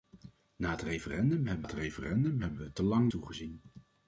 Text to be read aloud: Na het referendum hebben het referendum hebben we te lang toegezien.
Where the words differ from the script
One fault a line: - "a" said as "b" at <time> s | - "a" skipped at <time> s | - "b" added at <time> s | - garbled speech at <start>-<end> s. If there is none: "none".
none